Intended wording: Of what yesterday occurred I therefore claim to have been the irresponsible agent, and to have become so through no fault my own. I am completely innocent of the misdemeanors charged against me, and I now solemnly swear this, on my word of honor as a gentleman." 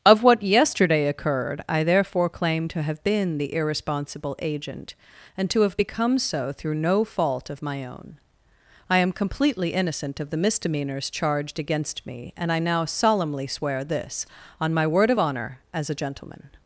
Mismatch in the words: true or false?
true